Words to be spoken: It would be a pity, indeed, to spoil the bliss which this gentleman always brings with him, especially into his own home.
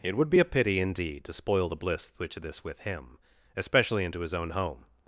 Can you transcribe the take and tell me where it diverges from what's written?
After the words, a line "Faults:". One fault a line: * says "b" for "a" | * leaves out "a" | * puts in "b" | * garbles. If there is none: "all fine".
It would be a pity, indeed, to spoil the bliss which this with him, especially into his own home.
Faults:
* leaves out "gentleman always brings"